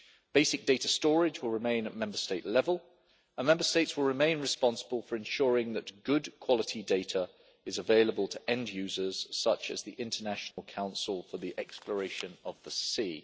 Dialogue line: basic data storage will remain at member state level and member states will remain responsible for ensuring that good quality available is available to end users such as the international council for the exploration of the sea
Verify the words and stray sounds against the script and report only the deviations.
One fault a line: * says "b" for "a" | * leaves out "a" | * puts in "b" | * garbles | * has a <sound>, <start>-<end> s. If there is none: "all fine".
* says "data" for "available"
* has a dropout, 10.5-10.6 s